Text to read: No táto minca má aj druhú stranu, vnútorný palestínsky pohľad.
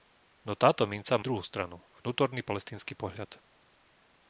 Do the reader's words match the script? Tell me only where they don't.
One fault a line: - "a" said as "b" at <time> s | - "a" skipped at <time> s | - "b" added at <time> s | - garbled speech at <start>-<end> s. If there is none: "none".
- "má" skipped at 1.2 s